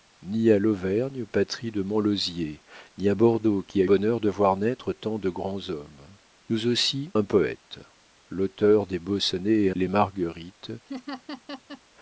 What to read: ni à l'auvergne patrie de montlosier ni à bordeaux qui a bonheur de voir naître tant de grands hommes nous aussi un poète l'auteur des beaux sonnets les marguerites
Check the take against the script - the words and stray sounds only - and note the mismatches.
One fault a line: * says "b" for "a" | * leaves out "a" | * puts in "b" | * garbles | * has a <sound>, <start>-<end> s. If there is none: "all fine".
* has a laugh, 10.9-11.8 s